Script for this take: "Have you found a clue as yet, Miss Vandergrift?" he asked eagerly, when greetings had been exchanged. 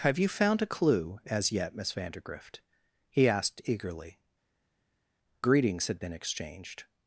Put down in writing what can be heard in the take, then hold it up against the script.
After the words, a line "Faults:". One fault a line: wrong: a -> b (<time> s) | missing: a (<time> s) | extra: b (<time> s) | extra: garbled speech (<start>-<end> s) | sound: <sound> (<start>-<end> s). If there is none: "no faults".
"Have you found a clue as yet, Miss Vandergrift?" he asked eagerly, greetings had been exchanged.
Faults:
missing: when (4.2 s)